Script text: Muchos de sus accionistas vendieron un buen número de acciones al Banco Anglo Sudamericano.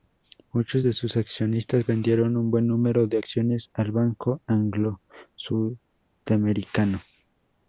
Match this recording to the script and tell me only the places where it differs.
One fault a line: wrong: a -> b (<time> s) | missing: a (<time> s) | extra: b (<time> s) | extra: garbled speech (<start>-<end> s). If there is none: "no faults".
no faults